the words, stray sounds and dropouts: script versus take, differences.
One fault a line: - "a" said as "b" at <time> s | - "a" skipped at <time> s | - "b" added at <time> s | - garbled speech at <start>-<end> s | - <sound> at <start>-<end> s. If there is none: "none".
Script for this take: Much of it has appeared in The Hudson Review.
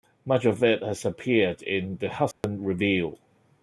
- dropout at 2.3-2.4 s